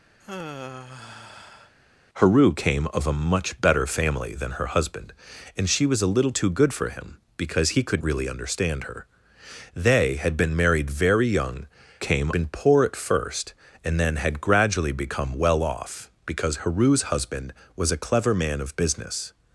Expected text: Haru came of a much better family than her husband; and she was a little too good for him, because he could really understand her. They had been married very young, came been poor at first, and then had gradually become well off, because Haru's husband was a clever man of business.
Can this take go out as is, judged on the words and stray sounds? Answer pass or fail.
fail